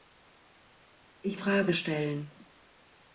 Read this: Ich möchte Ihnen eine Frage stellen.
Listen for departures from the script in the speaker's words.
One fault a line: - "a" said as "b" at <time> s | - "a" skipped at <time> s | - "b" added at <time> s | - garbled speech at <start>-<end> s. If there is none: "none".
- "möchte Ihnen eine" skipped at 1.4 s